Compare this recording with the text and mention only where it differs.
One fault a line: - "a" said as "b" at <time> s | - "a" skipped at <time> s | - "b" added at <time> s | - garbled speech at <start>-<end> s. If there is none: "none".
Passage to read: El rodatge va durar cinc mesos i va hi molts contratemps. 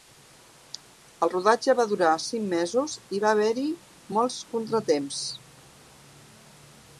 - "haver" added at 3.4 s